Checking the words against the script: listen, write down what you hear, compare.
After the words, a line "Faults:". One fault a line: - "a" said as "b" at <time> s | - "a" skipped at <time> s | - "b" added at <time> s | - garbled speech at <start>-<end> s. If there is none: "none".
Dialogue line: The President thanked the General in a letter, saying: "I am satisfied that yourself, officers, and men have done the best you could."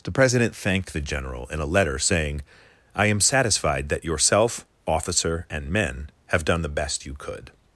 The President thanked the General in a letter, saying: "I am satisfied that yourself, officer, and men have done the best you could."
Faults:
- "officers" said as "officer" at 4.9 s